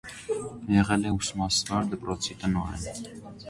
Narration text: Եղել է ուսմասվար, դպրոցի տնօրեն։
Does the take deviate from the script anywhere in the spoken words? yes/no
no